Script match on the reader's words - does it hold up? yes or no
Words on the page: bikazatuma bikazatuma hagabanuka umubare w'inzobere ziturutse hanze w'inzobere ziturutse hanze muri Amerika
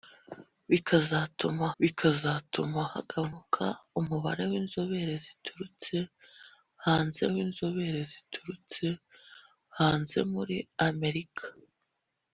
yes